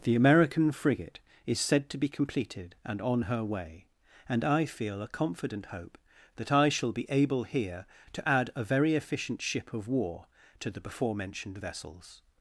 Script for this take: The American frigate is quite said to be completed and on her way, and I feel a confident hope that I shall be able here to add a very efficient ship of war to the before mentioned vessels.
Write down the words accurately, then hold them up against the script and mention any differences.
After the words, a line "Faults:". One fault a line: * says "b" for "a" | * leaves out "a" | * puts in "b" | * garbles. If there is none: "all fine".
The American frigate is said to be completed and on her way, and I feel a confident hope that I shall be able here to add a very efficient ship of war to the before mentioned vessels.
Faults:
* leaves out "quite"